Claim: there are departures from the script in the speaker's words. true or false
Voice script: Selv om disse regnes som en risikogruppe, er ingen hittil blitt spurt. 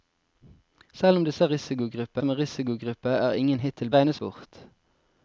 true